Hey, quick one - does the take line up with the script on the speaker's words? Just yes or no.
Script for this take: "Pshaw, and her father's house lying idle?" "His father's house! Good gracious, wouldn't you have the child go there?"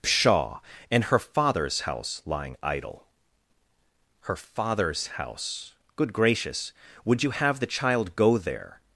no